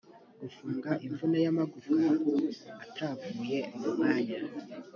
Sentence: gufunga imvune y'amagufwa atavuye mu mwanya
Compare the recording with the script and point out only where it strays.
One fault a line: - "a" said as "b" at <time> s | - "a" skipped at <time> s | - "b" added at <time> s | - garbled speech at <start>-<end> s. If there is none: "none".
none